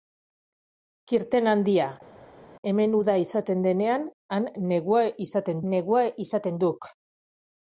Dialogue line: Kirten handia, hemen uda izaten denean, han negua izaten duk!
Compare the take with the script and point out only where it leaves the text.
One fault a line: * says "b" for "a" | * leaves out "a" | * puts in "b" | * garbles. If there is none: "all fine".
* puts in "negua izaten"